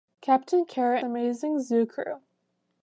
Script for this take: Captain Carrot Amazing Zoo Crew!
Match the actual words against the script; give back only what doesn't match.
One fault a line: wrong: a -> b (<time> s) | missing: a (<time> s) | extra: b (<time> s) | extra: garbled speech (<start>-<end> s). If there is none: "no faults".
no faults